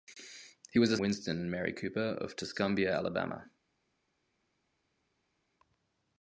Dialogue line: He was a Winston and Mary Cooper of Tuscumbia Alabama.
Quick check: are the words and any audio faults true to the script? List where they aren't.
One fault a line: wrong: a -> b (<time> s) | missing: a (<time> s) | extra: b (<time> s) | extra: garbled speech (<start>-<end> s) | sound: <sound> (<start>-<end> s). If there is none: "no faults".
no faults